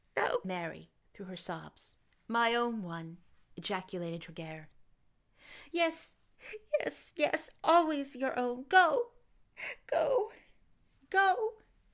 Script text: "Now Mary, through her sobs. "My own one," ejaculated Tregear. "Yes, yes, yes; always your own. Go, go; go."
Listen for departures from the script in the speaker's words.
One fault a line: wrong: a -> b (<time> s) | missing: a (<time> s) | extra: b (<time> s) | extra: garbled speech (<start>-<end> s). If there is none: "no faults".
no faults